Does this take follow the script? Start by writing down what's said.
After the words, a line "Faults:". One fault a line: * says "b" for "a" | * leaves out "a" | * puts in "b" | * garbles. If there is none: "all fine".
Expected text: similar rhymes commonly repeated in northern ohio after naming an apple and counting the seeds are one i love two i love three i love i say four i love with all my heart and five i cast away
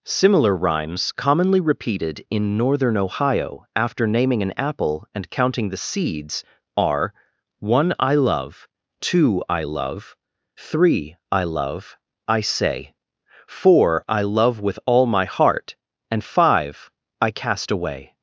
similar rhymes commonly repeated in northern ohio after naming an apple and counting the seeds are one i love two i love three i love i say four i love with all my heart and five i cast away
Faults:
all fine